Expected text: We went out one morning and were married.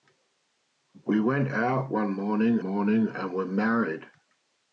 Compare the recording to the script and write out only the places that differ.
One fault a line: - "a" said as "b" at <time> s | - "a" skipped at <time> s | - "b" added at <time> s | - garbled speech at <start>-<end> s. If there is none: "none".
- "morning" added at 2.6 s